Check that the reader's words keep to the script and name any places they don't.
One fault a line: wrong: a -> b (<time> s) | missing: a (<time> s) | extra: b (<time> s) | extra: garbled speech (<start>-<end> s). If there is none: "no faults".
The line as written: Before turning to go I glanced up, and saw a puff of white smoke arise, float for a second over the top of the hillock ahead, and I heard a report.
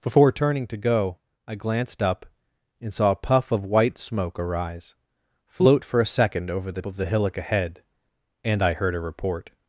missing: top (6.8 s)